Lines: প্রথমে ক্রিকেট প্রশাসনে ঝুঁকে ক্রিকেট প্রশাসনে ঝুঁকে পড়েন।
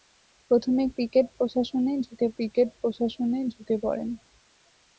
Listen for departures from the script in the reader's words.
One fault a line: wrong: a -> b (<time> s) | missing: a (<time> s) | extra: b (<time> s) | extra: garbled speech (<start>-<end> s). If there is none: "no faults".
no faults